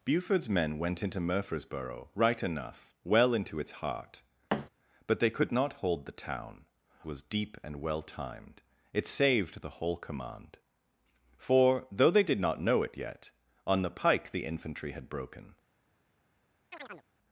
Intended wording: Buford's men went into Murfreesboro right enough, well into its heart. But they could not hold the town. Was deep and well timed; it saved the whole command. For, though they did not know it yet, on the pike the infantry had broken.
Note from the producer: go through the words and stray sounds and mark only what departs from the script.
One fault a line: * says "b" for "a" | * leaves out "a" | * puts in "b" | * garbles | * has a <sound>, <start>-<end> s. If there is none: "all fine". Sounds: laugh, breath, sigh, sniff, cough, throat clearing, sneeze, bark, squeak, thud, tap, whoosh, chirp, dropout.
* has a thud, 4.5-4.7 s
* has a chirp, 16.7-17.1 s